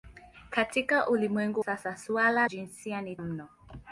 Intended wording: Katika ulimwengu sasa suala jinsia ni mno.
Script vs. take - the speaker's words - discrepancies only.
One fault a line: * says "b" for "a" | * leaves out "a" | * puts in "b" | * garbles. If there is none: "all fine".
all fine